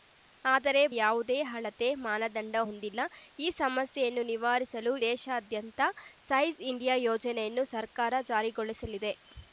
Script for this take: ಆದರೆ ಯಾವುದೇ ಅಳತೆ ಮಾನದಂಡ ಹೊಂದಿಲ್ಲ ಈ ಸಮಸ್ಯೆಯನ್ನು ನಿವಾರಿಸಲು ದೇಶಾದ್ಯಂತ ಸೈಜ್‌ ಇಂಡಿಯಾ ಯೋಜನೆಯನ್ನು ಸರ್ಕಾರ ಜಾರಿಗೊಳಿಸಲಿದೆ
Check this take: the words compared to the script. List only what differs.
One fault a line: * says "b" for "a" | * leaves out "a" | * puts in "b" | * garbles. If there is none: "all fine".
all fine